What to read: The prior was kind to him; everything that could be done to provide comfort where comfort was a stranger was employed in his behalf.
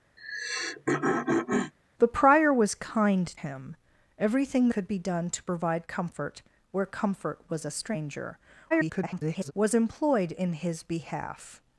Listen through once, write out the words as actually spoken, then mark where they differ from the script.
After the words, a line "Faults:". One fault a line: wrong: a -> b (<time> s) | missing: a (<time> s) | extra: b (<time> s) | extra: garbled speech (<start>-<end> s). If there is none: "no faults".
The prior was kind him; everything could be done to provide comfort where comfort was a stranger [garbled] was employed in his behalf.
Faults:
missing: to (3.3 s)
missing: that (4.7 s)
extra: garbled speech (8.7-9.5 s)